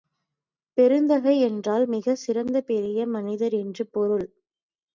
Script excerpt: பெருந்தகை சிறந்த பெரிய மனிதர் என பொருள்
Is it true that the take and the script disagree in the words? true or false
true